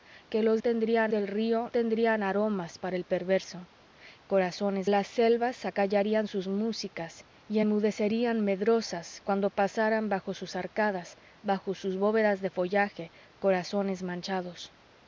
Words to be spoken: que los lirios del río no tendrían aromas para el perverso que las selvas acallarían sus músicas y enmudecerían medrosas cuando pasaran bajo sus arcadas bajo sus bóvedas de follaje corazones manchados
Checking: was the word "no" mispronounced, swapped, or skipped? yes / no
yes